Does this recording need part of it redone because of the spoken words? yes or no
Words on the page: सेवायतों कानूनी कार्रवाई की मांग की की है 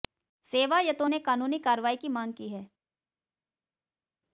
yes